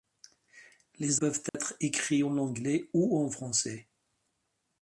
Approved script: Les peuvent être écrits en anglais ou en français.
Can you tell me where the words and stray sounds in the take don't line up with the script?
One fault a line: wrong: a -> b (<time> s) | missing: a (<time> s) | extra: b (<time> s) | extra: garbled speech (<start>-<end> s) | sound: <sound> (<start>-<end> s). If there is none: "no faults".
sound: dropout (1.5-1.5 s)